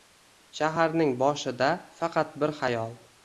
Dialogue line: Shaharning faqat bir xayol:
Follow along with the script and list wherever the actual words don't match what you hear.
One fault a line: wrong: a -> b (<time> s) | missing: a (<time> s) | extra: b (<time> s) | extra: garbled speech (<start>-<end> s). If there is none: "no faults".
extra: boshida (1.2 s)